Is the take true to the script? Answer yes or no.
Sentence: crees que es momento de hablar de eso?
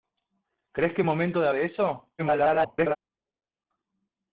no